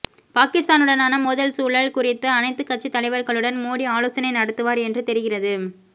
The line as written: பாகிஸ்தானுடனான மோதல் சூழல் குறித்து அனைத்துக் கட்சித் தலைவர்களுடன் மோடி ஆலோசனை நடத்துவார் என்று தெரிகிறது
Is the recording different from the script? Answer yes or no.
no